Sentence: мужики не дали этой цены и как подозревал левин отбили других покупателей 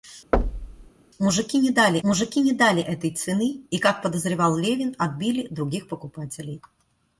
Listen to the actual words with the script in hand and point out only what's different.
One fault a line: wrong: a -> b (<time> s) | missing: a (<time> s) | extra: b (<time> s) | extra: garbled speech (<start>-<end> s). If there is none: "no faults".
extra: мужики не дали (2.0 s)